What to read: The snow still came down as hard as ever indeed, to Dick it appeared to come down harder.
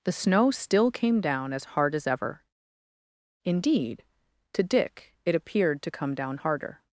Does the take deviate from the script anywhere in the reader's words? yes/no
no